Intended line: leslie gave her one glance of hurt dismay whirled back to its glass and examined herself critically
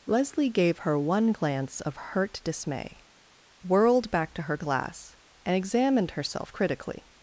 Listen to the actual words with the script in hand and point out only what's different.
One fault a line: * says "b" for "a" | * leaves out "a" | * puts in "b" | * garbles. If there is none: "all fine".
* says "her" for "its"